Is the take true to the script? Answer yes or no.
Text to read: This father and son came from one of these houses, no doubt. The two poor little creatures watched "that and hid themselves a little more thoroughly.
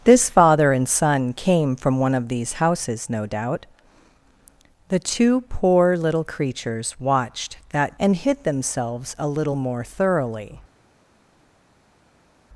yes